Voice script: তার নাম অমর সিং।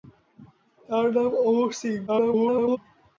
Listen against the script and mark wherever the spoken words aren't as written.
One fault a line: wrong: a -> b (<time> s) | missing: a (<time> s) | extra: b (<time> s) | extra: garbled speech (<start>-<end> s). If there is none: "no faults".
extra: garbled speech (2.1-2.8 s)